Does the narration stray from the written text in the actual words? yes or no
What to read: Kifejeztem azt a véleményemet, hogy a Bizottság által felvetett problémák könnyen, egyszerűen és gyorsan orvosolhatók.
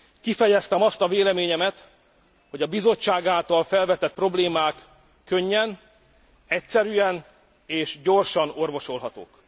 no